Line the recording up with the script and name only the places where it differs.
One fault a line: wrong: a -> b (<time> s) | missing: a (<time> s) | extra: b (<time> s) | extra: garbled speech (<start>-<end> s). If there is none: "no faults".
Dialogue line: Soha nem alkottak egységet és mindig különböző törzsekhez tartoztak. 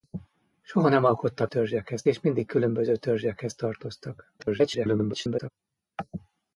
wrong: egységet -> törzsekhez (1.4 s)
extra: garbled speech (4.4-5.5 s)